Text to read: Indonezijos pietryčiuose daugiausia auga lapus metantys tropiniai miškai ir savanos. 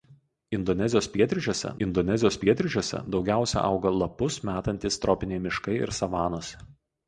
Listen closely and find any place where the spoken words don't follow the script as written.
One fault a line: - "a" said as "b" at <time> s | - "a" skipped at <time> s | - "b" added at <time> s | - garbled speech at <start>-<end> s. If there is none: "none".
- "indonezijos pietryčiuose" added at 1.9 s